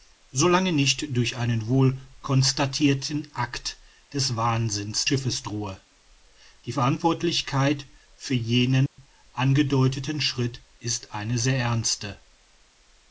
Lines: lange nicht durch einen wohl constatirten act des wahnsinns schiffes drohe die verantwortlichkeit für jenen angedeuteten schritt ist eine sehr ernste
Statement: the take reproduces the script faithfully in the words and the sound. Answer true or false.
false